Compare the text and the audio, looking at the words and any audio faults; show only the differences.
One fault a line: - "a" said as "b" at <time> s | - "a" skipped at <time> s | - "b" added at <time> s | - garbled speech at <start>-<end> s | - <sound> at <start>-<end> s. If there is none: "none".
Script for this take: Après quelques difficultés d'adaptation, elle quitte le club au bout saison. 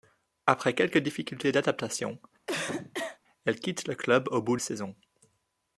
- cough at 2.5-3.2 s